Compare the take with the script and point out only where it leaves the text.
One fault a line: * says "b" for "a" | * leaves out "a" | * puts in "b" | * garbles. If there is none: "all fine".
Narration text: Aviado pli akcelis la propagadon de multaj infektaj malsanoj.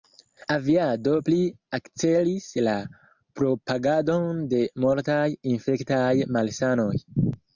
all fine